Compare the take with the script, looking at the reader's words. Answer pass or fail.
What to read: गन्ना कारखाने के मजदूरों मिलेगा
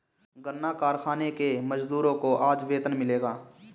fail